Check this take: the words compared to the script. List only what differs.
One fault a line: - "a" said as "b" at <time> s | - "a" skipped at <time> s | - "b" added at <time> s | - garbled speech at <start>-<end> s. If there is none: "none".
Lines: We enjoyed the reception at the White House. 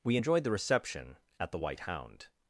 - "House" said as "Hound" at 1.8 s